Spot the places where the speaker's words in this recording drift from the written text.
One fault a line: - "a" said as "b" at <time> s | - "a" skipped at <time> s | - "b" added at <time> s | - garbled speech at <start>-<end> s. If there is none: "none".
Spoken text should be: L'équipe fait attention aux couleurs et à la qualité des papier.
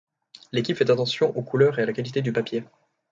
- "des" said as "du" at 2.2 s